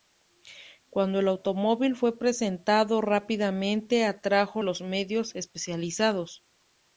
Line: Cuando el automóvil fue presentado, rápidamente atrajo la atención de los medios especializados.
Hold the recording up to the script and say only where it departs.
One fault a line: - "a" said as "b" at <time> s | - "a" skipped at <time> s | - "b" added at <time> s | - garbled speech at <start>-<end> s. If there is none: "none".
- "la atención de" skipped at 4.6 s